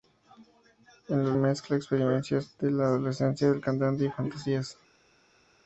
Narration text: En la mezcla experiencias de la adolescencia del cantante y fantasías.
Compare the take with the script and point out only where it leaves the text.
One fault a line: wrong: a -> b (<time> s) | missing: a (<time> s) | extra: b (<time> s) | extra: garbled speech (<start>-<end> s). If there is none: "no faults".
no faults